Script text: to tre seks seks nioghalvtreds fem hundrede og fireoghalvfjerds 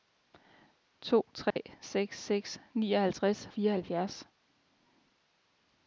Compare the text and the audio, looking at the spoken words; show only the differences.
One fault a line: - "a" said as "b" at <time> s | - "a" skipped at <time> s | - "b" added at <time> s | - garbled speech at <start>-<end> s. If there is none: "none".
- "fem hundrede og" skipped at 3.5 s